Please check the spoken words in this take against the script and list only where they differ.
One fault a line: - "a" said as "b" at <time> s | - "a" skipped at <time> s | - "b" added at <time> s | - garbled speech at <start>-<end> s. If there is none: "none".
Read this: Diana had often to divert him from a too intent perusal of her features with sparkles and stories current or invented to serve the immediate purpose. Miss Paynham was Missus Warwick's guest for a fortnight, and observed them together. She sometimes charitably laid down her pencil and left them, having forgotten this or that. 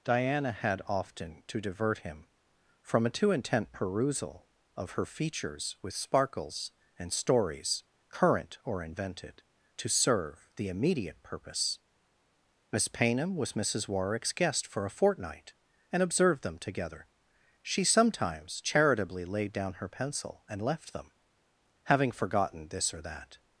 none